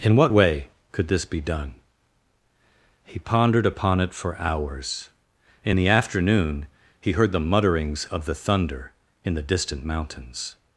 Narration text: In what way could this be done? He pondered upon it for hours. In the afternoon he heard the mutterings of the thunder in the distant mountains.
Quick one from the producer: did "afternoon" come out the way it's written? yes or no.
yes